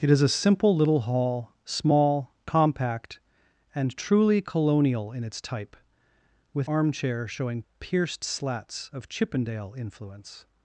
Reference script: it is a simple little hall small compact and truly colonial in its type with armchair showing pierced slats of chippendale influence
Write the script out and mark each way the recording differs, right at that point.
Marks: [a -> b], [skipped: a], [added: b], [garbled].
it is a simple little hall small compact and truly colonial in its type with armchair showing pierced slats of chippendale influence